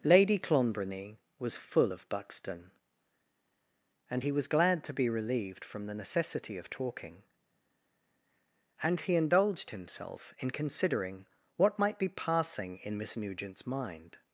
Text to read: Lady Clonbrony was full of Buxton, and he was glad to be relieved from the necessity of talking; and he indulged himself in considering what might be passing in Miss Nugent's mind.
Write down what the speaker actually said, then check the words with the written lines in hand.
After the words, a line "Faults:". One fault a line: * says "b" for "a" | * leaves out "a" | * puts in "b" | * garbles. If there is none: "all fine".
Lady Clonbrony was full of Buxton, and he was glad to be relieved from the necessity of talking; and he indulged himself in considering what might be passing in Miss Nugent's mind.
Faults:
all fine